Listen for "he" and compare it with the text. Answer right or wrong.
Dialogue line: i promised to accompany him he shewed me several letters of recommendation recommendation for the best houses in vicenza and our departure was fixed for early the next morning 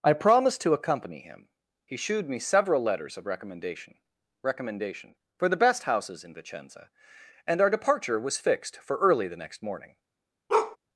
right